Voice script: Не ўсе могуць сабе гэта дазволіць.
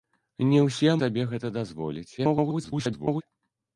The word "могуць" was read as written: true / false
false